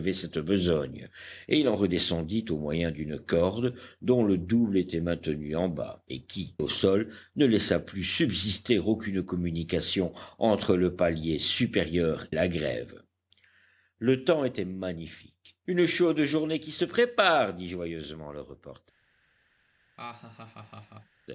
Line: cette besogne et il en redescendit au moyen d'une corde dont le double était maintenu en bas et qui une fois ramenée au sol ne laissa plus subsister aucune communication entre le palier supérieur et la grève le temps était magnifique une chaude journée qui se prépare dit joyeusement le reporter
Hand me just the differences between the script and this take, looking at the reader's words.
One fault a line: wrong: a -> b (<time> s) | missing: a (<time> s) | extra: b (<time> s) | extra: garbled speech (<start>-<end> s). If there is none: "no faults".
missing: une fois ramenée (6.5 s)
missing: et (12.3 s)